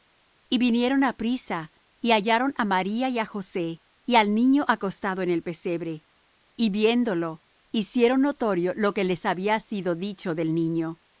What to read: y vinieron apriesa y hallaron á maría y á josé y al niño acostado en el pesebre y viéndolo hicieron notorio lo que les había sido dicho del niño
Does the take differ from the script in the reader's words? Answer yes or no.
no